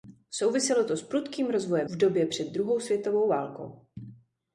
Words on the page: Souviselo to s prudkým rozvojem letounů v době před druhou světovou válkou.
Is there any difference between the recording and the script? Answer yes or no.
yes